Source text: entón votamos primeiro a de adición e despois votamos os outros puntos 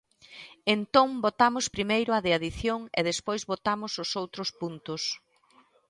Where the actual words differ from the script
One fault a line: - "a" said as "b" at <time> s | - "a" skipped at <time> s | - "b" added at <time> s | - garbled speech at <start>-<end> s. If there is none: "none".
none